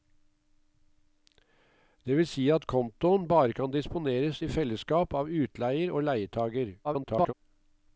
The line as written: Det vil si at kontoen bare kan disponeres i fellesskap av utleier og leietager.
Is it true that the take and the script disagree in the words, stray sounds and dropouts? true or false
true